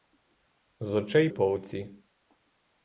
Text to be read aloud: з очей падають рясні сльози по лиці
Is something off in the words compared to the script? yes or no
yes